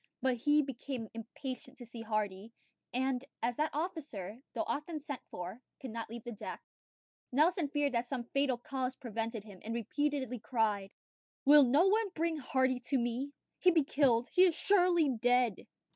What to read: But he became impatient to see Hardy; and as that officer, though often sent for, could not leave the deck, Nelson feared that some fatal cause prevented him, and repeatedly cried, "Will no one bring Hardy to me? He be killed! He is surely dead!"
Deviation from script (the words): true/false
false